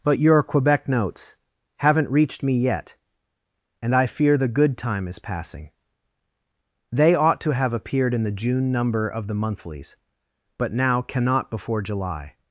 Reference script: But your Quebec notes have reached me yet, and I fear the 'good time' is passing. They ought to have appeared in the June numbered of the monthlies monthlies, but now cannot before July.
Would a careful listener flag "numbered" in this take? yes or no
yes